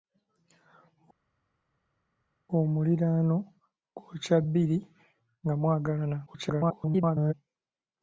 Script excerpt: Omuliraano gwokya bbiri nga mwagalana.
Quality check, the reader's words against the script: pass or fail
fail